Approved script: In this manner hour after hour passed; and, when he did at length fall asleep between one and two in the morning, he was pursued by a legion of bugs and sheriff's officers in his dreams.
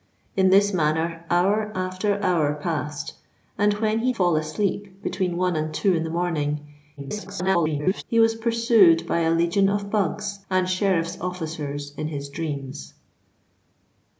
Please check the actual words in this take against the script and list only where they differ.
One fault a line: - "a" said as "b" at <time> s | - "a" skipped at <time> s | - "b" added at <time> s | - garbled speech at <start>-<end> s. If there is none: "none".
- "did at length" skipped at 4.1 s
- garbled speech at 7.0-8.0 s